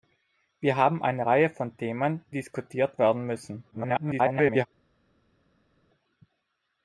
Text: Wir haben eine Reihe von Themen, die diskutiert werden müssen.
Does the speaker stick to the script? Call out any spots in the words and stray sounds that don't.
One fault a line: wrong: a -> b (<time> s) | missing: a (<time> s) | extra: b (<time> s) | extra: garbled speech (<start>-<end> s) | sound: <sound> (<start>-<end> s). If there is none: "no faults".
missing: die (2.2 s)
extra: garbled speech (3.7-4.7 s)